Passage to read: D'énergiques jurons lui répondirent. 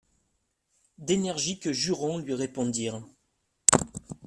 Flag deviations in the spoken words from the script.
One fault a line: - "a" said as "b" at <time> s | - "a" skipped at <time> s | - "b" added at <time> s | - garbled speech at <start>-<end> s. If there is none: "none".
none